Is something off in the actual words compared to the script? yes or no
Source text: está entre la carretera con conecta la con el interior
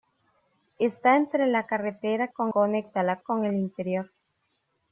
no